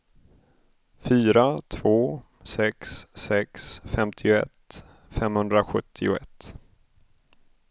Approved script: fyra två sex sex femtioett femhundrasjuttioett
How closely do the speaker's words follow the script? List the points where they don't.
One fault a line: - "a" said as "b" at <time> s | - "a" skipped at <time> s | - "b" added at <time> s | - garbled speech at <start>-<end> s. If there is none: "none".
none